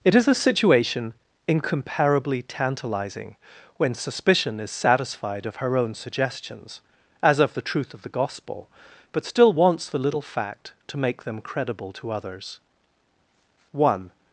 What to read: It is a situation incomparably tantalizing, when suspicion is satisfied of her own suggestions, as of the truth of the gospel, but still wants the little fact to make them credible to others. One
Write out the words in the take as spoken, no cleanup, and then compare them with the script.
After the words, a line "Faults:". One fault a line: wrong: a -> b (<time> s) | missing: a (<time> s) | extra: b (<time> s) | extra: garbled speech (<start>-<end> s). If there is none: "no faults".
It is a situation incomparably tantalizing, when suspicion is satisfied of her own suggestions, as of the truth of the gospel, but still wants the little fact to make them credible to others. One
Faults:
no faults